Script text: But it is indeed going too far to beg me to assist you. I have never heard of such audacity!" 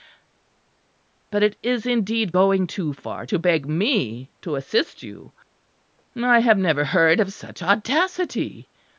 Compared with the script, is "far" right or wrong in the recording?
right